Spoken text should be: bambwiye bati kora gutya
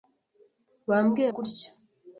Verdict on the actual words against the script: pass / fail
fail